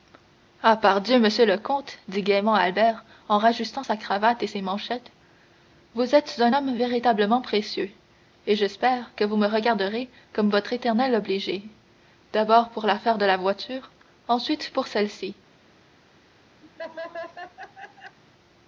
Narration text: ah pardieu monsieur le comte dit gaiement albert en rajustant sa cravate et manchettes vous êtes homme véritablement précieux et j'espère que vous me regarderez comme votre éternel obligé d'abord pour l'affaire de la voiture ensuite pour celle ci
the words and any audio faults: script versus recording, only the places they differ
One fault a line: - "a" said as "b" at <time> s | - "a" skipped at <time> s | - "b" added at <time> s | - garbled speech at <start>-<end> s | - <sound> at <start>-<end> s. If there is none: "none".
- "ses" added at 4.5 s
- "un" added at 6.4 s
- laugh at 16.6-18.2 s